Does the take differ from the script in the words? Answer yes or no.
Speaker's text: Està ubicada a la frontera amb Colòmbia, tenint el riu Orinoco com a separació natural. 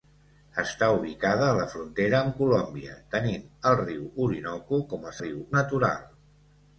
yes